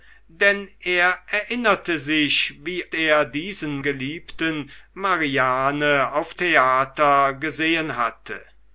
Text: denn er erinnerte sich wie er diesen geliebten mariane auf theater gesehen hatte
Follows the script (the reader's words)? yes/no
yes